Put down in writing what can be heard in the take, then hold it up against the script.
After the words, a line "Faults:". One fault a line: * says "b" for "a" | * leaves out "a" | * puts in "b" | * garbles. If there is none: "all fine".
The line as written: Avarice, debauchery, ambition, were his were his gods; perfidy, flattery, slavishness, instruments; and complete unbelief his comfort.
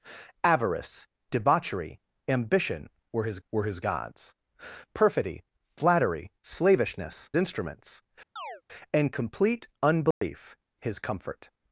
Avarice, debauchery, ambition, were his were his gods; perfidy, flattery, slavishness, instruments; and complete unbelief his comfort.
Faults:
all fine